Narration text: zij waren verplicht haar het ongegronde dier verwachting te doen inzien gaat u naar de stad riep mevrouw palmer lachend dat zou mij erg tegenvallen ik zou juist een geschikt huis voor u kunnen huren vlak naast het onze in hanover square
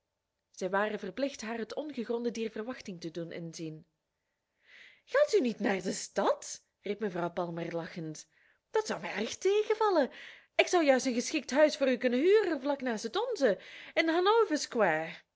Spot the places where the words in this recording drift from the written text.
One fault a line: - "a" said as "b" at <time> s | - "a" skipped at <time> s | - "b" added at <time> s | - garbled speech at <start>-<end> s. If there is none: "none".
- "niet" added at 5.4 s